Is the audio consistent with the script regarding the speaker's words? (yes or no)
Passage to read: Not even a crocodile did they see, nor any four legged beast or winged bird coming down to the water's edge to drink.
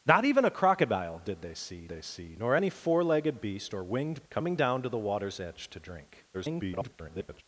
no